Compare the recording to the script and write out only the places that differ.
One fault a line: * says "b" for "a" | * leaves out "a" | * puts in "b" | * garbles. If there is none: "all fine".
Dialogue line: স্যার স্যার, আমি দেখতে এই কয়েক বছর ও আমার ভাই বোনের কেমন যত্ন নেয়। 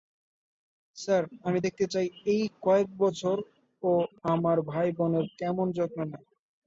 * leaves out "স্যার"
* puts in "চাই"